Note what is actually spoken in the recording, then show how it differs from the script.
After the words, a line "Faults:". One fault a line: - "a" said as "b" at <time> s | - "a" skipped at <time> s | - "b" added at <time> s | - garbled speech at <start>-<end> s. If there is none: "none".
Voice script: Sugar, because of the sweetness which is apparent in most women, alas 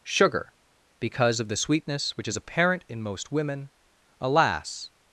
Sugar, because of the sweetness which is apparent in most women, alas
Faults:
none